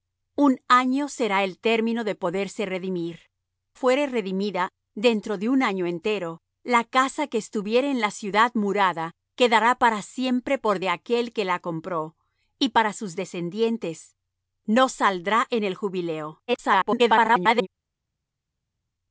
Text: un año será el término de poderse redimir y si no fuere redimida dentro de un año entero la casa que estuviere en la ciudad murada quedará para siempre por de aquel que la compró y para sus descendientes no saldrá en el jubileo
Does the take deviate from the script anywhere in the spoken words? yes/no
yes